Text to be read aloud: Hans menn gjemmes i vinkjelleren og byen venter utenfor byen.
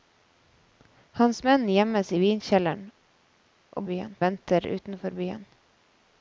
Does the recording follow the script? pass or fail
pass